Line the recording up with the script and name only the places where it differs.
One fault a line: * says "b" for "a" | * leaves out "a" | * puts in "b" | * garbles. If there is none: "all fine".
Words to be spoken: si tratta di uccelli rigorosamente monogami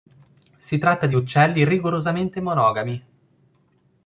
all fine